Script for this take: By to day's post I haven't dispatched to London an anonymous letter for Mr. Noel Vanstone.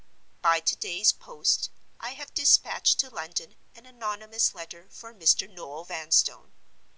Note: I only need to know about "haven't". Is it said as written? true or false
false